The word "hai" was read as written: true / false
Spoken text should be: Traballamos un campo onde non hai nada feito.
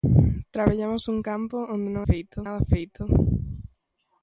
false